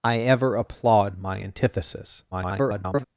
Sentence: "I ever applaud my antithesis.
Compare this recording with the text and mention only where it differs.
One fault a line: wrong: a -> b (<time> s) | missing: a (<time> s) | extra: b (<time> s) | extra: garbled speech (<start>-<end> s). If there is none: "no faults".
extra: garbled speech (2.3-3.0 s)